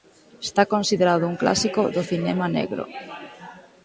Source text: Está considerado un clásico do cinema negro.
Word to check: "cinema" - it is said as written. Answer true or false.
true